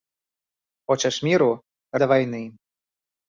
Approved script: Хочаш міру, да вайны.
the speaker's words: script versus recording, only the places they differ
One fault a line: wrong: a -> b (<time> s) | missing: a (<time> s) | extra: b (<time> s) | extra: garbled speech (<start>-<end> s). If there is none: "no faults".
no faults